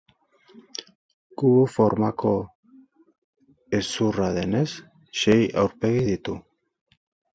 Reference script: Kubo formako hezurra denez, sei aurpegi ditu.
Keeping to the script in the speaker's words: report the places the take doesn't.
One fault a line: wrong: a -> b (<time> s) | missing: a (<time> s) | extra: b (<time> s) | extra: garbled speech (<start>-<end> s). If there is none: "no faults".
no faults